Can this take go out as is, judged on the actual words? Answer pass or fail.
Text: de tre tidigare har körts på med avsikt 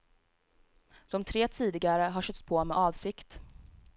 pass